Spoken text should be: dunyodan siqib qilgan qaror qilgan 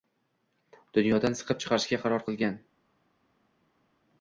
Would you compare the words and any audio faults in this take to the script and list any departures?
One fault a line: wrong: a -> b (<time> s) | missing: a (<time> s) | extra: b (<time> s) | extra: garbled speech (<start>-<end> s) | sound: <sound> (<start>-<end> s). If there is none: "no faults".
wrong: qilgan -> chiqarishga (1.7 s)